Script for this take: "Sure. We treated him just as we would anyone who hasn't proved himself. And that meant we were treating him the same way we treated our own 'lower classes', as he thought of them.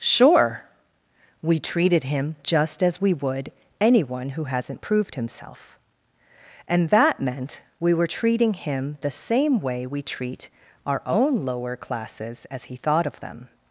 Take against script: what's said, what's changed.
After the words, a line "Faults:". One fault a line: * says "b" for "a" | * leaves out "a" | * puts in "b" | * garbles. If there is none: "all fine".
"Sure. We treated him just as we would anyone who hasn't proved himself. And that meant we were treating him the same way we treat our own 'lower classes', as he thought of them.
Faults:
* says "treat" for "treated"